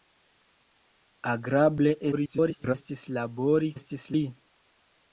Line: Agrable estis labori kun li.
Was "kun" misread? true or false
true